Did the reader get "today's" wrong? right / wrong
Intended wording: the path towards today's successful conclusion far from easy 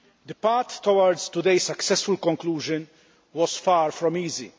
right